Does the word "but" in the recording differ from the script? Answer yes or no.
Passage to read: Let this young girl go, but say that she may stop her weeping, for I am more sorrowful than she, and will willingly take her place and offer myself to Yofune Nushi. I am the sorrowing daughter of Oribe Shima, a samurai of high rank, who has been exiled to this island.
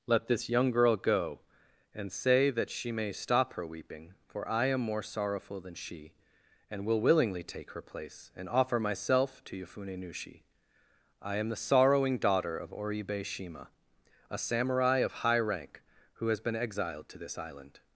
yes